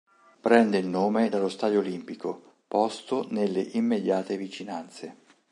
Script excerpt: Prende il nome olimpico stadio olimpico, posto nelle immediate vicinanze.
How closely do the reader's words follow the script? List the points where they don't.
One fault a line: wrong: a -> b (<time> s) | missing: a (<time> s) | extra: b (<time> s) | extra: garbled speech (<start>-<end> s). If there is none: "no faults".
wrong: olimpico -> dallo (1.3 s)